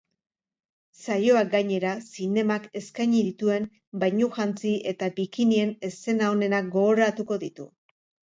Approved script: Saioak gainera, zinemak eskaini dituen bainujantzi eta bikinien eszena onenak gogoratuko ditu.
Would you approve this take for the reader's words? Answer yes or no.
yes